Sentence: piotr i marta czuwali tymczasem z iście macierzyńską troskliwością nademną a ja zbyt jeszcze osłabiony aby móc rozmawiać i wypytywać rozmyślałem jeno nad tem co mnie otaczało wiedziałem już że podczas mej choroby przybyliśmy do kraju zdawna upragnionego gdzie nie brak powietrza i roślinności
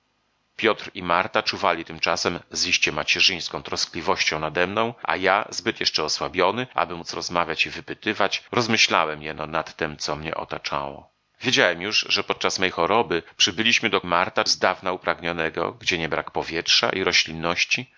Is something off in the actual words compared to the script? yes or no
yes